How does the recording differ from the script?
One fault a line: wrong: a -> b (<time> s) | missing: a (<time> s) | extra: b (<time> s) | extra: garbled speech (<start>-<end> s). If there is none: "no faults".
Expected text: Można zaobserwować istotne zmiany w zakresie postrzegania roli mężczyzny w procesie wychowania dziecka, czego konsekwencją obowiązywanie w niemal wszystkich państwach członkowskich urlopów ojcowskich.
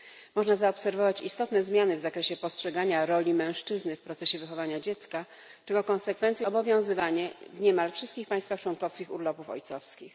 no faults